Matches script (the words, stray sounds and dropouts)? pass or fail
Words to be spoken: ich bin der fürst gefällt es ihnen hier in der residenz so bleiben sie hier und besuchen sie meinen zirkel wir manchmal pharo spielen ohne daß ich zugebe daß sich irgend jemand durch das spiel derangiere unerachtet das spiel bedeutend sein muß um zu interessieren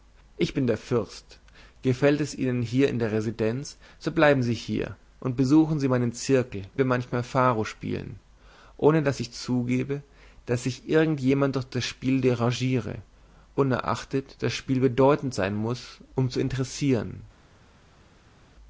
pass